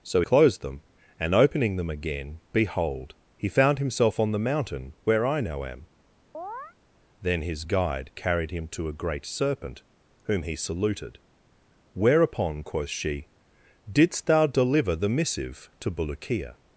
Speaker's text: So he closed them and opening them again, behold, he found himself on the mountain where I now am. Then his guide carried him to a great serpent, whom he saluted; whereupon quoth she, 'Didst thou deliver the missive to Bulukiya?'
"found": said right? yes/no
yes